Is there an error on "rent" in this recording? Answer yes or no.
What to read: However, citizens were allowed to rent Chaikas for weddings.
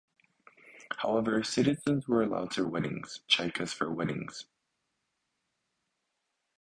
yes